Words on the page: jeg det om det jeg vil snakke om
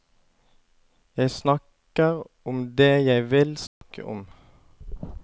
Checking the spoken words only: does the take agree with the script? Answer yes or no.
no